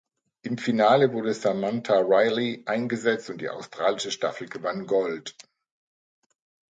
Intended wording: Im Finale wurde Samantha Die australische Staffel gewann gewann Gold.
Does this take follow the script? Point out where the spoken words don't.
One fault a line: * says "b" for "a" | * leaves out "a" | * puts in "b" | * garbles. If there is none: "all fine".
* puts in "Riley eingesetzt und"
* leaves out "gewann"